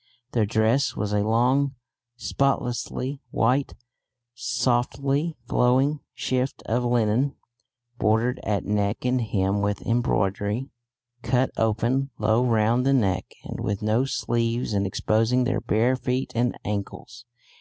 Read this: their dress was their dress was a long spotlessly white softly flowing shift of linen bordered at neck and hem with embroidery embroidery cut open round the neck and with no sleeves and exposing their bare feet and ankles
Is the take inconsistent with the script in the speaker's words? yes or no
yes